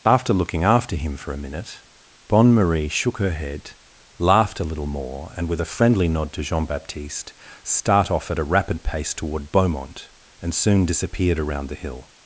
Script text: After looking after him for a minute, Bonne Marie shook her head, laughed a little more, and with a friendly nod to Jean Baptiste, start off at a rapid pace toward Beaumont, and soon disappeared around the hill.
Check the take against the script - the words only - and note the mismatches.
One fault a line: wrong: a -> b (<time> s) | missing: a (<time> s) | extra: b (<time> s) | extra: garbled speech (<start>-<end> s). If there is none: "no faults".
no faults